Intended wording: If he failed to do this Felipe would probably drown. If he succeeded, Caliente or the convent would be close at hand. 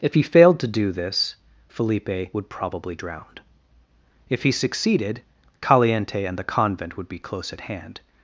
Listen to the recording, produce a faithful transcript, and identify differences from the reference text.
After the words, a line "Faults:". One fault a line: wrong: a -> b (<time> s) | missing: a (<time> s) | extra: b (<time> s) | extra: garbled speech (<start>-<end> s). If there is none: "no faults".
If he failed to do this Felipe would probably drown. If he succeeded, Caliente and the convent would be close at hand.
Faults:
wrong: or -> and (6.3 s)